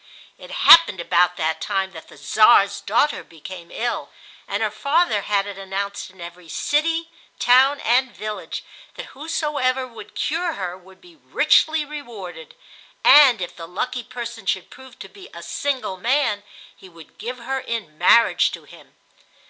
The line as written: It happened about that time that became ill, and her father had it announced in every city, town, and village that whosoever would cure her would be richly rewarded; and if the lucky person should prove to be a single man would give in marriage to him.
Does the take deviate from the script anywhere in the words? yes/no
yes